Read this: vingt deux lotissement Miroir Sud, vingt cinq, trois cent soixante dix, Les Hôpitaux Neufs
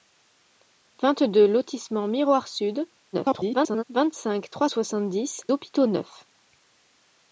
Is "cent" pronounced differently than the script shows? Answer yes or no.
yes